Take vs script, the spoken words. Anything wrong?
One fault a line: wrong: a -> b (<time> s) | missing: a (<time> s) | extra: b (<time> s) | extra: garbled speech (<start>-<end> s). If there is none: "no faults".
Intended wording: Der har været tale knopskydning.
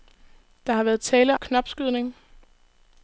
no faults